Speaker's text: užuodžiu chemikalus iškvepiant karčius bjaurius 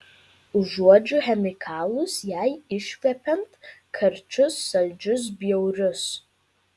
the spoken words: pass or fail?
fail